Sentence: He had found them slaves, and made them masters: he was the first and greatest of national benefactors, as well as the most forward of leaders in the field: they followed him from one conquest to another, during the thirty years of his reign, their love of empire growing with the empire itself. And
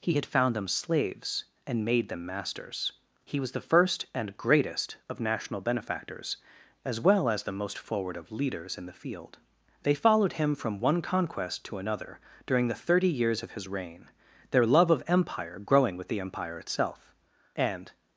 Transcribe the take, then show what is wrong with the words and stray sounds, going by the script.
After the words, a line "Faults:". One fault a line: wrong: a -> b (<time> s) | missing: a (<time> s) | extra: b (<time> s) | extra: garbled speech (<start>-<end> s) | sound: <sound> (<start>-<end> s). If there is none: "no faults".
He had found them slaves, and made them masters: he was the first and greatest of national benefactors, as well as the most forward of leaders in the field: they followed him from one conquest to another, during the thirty years of his reign, their love of empire growing with the empire itself. And
Faults:
no faults